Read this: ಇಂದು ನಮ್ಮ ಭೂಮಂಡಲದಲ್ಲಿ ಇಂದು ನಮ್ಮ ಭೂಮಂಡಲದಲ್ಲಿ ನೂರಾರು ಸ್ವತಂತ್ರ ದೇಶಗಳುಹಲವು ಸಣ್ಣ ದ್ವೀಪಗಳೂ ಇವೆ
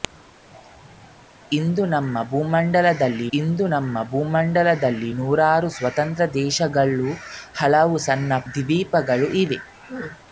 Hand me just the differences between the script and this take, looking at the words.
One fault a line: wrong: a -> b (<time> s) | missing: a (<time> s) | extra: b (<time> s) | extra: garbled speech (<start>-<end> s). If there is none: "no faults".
no faults